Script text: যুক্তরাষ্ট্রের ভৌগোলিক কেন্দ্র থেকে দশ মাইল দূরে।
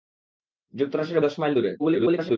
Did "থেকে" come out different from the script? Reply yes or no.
yes